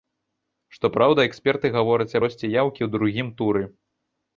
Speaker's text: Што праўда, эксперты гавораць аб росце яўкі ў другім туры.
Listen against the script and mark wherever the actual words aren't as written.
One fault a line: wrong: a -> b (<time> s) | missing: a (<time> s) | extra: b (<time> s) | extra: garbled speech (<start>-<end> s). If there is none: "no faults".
missing: аб (2.2 s)